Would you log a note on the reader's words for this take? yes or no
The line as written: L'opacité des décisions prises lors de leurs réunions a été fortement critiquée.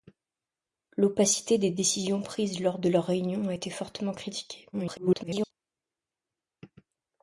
yes